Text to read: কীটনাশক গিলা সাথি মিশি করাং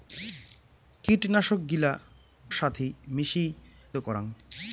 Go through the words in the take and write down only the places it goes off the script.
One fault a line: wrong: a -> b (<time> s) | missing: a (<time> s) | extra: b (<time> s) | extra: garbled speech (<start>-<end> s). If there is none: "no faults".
no faults